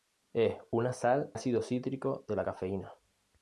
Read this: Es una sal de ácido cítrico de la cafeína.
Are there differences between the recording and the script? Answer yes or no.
yes